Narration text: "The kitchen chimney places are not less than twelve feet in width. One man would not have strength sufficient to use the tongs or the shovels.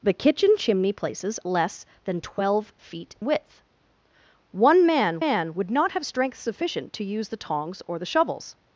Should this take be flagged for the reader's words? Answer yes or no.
yes